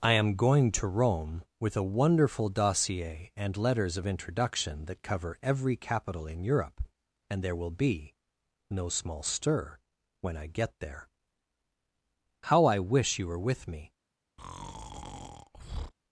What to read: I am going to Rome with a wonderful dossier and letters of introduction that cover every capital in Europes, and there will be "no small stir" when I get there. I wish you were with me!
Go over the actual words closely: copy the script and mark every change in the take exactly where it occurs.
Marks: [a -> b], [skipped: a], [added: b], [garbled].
I am going to Rome with a wonderful dossier and letters of introduction that cover every capital in [Europes, -> Europe] and there will be "no small stir" when I get there. [added: How] I wish you were with me!